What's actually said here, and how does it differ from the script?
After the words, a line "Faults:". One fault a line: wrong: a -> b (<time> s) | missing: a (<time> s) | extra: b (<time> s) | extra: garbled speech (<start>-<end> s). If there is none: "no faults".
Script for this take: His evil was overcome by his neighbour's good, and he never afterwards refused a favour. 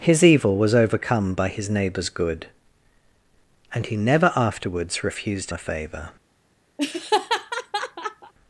His evil was overcome by his neighbour's good, and he never afterwards refused a favour.
Faults:
no faults